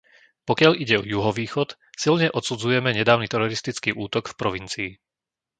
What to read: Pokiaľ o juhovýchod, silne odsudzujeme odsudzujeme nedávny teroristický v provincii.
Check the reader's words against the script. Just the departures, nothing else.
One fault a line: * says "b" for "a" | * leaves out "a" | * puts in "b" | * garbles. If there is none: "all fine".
* puts in "ide"
* leaves out "odsudzujeme"
* puts in "útok"